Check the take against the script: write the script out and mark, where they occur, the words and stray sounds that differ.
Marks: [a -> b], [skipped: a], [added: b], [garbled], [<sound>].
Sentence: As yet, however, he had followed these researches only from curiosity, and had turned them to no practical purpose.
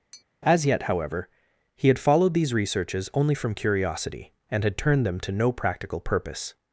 [tap] As yet, however, he had followed these researches only from curiosity, and had turned them to no practical purpose.